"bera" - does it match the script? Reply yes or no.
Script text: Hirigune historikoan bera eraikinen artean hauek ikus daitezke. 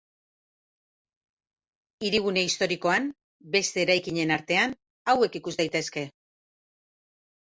no